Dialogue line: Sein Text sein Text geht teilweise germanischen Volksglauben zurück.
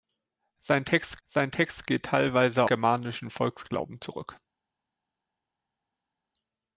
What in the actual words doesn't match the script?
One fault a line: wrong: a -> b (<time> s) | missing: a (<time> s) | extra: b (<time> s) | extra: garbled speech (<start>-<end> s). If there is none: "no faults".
no faults